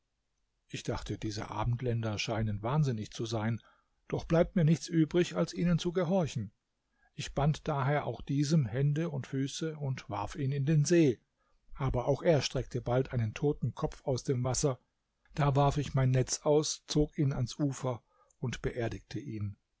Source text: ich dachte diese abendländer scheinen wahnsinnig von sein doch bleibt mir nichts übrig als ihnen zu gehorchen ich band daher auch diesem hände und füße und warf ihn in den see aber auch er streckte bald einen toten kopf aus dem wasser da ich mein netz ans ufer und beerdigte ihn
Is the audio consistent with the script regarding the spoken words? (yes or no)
no